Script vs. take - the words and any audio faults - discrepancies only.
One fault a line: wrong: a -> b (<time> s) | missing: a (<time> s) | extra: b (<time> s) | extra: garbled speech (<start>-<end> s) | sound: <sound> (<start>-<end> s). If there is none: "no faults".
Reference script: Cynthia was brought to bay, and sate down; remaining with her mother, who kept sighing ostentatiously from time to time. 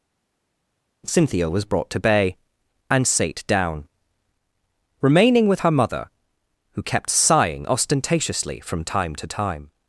no faults